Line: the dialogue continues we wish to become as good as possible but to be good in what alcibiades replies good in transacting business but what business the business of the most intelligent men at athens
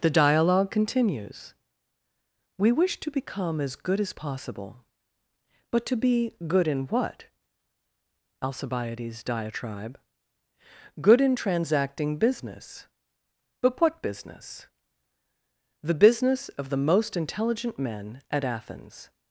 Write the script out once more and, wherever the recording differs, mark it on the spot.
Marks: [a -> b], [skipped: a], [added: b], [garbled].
the dialogue continues we wish to become as good as possible but to be good in what alcibiades [replies -> diatribe] good in transacting business but what business the business of the most intelligent men at athens